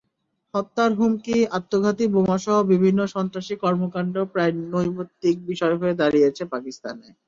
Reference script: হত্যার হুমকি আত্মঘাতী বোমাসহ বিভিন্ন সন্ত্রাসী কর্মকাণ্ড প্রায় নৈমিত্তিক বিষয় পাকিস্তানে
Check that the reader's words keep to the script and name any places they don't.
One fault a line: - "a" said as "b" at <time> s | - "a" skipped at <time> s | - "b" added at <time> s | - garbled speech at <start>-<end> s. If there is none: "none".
- "হয়ে দাঁড়িয়েছে" added at 5.8 s